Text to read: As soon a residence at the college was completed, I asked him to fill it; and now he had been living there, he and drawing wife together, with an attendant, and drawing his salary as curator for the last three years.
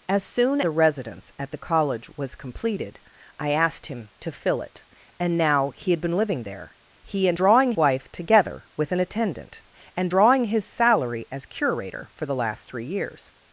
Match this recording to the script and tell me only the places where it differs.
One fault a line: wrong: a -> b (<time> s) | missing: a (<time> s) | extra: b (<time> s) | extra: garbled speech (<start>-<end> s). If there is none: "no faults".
no faults